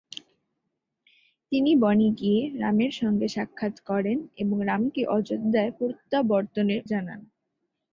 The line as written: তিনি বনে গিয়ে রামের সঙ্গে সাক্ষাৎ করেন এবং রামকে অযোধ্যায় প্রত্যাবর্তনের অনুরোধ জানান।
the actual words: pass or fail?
fail